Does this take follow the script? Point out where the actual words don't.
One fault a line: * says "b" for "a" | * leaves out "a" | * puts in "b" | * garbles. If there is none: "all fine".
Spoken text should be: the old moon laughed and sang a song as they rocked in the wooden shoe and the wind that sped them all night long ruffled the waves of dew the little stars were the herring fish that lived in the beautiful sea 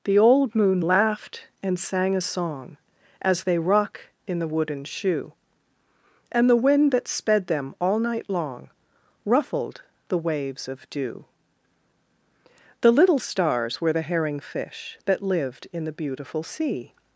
* says "rock" for "rocked"